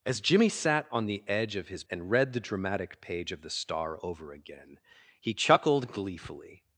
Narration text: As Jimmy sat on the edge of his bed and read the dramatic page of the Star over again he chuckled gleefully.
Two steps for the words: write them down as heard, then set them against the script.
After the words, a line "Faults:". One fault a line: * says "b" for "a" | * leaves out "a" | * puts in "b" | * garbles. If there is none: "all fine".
As Jimmy sat on the edge of his and read the dramatic page of the Star over again he chuckled gleefully.
Faults:
* leaves out "bed"